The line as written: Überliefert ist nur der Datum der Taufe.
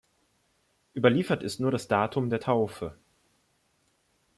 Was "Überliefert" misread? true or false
false